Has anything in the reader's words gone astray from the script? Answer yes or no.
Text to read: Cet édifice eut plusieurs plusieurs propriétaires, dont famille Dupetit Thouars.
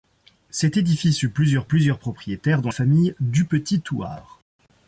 no